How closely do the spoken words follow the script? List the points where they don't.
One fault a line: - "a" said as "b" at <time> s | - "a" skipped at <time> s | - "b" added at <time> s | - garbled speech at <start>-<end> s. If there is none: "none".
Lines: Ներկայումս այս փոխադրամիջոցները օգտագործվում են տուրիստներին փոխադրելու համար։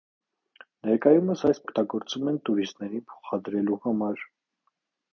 - "փոխադրամիջոցները" skipped at 1.6 s